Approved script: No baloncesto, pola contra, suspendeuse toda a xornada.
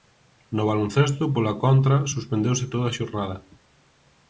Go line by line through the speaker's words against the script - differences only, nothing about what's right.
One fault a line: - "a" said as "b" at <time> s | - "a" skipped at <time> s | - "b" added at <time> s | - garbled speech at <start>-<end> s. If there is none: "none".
none